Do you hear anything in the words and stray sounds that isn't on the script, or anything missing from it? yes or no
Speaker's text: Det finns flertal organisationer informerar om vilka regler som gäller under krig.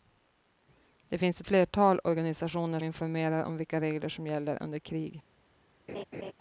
yes